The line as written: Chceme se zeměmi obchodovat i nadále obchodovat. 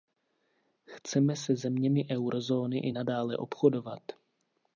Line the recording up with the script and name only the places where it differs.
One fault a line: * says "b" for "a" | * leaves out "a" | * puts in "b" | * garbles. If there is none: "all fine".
* says "eurozóny" for "obchodovat"